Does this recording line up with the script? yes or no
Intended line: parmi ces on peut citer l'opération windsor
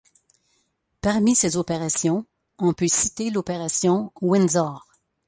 no